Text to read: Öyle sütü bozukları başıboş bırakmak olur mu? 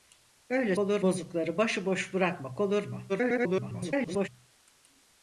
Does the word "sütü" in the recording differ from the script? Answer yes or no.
yes